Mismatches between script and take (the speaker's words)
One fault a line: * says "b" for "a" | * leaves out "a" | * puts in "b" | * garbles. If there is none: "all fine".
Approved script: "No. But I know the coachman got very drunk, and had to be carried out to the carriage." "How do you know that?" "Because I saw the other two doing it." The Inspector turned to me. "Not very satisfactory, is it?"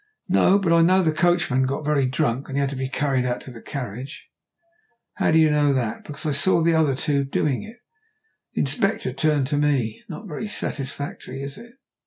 all fine